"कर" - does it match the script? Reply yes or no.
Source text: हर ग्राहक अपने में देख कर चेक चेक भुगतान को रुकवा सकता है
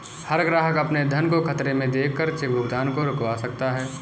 yes